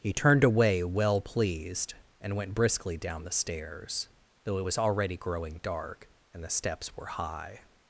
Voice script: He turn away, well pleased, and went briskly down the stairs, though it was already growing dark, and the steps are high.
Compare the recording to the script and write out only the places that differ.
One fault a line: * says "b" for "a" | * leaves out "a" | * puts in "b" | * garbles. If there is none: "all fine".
* says "turned" for "turn"
* says "were" for "are"